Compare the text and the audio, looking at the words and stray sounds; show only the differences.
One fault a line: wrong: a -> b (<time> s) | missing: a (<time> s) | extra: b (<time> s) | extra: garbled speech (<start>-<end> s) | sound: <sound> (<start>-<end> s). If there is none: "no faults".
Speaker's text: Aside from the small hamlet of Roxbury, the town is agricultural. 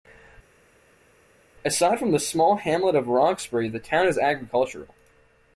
no faults